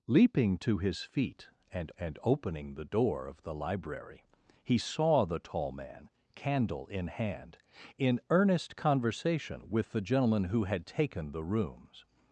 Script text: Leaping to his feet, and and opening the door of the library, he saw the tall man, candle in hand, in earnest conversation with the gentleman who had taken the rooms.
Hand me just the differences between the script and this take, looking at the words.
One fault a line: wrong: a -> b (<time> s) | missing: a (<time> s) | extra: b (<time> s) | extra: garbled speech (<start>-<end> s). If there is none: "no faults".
no faults